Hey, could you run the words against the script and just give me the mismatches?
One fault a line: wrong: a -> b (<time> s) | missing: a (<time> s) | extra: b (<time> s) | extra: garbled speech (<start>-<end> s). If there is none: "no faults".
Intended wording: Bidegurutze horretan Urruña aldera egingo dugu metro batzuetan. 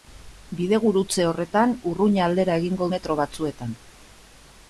missing: dugu (2.9 s)